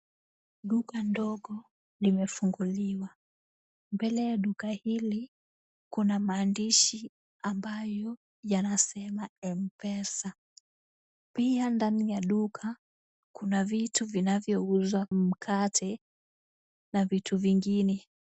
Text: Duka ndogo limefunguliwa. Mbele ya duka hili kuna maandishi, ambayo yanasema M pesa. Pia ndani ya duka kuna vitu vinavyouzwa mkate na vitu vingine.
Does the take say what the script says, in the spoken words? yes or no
yes